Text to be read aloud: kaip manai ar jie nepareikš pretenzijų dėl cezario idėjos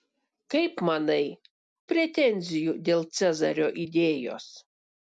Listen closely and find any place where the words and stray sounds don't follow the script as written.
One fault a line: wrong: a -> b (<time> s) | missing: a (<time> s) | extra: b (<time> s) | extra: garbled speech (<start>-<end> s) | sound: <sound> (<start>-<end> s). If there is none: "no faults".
missing: ar jie nepareikš (1.3 s)